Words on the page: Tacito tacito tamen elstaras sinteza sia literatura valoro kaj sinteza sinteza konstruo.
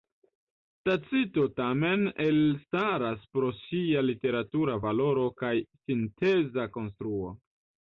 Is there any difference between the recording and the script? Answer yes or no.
yes